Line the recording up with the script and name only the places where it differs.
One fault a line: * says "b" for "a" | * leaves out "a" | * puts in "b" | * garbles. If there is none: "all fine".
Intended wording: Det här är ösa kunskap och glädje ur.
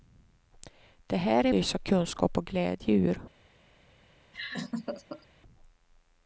all fine